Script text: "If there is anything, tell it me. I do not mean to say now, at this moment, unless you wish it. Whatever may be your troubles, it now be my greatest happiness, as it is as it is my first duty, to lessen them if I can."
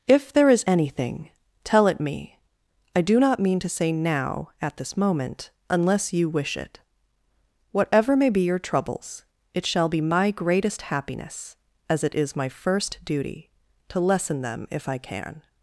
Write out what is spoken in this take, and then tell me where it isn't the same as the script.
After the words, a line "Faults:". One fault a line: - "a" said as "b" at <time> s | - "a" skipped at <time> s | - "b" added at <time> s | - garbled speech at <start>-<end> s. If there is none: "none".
"If there is anything, tell it me. I do not mean to say now, at this moment, unless you wish it. Whatever may be your troubles, it shall be my greatest happiness, as it is my first duty, to lessen them if I can."
Faults:
- "now" said as "shall" at 9.6 s
- "as it is" skipped at 12.3 s